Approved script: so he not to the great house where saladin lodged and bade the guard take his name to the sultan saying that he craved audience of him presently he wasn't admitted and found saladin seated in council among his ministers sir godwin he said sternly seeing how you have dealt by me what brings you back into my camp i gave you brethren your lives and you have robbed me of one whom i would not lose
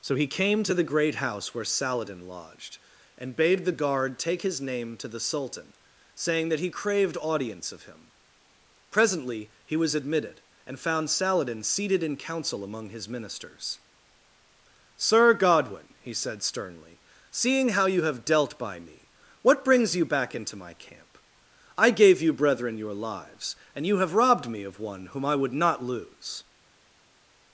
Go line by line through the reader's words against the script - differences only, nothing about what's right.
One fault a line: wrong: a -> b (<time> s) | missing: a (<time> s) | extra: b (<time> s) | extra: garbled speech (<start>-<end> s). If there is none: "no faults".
wrong: not -> came (0.3 s)
wrong: wasn't -> was (9.8 s)